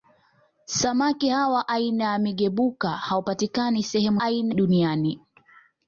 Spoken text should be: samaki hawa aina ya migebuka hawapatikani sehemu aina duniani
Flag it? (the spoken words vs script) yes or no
no